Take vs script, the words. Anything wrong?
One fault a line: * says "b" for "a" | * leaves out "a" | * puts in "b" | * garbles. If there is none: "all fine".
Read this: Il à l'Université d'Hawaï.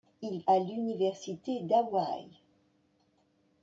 all fine